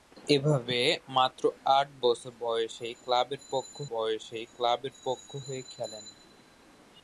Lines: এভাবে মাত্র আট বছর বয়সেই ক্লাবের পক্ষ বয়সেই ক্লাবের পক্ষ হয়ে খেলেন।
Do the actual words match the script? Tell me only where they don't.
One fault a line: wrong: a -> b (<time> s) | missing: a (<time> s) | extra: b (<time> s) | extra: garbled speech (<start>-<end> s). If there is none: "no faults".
no faults